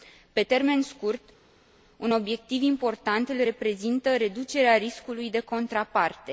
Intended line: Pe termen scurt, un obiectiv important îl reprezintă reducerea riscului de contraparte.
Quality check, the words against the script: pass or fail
pass